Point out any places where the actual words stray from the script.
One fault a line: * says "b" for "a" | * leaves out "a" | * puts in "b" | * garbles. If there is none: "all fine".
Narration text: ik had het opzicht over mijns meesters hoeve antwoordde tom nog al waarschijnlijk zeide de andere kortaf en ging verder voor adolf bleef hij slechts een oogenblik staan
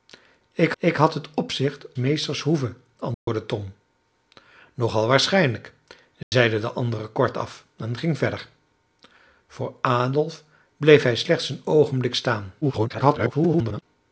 * puts in "ik"
* leaves out "over mijns"
* garbles